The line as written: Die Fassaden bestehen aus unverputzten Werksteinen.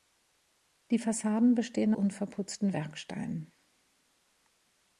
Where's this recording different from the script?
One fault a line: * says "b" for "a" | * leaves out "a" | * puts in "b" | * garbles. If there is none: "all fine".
* leaves out "aus"